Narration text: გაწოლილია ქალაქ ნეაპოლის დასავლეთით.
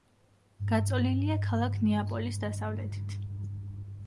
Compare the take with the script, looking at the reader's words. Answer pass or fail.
pass